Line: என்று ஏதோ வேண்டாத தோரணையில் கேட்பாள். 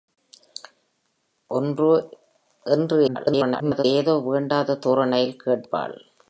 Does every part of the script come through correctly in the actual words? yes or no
no